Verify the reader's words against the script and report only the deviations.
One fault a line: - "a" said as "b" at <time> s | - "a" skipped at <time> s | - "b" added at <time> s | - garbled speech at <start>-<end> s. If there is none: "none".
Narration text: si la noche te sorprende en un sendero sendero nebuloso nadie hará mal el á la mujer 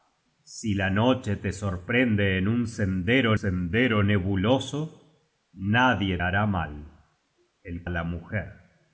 none